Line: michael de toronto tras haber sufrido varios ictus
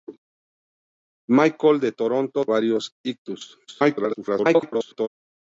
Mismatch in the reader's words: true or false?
true